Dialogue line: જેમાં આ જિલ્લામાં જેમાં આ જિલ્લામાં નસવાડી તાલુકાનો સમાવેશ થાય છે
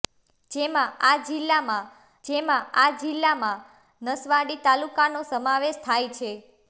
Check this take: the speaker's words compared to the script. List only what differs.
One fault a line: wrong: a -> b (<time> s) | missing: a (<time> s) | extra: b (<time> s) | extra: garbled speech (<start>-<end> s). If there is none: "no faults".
no faults